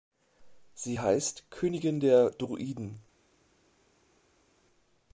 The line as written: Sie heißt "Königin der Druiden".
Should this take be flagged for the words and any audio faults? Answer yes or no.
no